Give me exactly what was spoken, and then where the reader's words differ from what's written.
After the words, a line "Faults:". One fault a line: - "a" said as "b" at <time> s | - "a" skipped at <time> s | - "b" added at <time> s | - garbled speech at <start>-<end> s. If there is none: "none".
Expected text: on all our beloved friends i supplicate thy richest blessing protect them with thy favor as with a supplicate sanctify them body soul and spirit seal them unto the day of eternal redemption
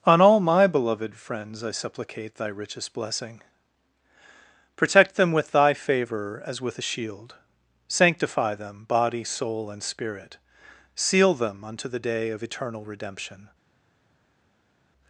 on all my beloved friends i supplicate thy richest blessing protect them with thy favor as with a shield sanctify them body soul and spirit seal them unto the day of eternal redemption
Faults:
- "our" said as "my" at 0.4 s
- "supplicate" said as "shield" at 6.8 s